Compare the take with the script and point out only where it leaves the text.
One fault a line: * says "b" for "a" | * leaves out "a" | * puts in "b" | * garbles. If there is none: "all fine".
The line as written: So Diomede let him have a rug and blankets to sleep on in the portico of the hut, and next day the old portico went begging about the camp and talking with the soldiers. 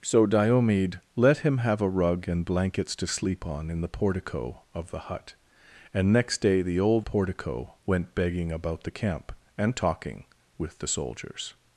all fine